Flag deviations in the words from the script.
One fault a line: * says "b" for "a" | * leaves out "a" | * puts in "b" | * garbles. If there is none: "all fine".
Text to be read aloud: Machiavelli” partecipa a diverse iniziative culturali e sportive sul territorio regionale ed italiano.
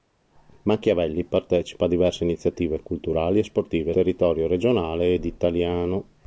* leaves out "sul"